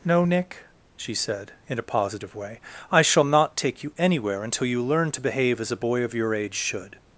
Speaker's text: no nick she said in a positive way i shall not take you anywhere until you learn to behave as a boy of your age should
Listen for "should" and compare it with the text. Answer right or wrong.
right